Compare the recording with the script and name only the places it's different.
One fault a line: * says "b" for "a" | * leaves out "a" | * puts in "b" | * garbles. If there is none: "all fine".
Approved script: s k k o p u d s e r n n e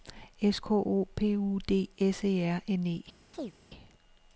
* leaves out "k"
* leaves out "n"